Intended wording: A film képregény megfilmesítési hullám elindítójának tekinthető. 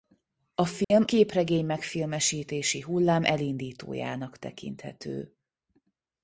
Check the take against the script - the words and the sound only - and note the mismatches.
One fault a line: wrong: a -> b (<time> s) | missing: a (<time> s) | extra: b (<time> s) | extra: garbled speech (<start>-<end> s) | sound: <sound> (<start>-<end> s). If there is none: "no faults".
sound: dropout (0.8-0.9 s)